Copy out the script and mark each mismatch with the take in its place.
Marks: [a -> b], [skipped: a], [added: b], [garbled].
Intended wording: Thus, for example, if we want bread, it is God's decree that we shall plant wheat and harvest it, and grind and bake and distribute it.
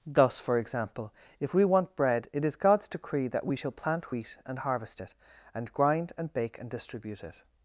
Thus, for example, if we want bread, it is God's decree that we shall plant wheat and harvest it, and grind and bake and distribute it.